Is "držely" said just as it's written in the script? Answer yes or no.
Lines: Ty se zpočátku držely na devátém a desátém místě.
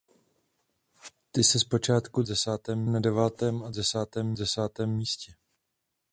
no